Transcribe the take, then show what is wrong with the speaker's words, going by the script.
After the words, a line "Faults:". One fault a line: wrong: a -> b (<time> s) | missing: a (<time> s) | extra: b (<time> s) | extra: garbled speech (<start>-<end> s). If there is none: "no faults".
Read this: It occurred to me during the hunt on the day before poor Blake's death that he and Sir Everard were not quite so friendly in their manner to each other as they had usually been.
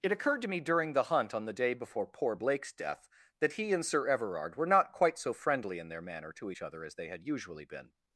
It occurred to me during the hunt on the day before poor Blake's death that he and Sir Everard were not quite so friendly in their manner to each other as they had usually been.
Faults:
no faults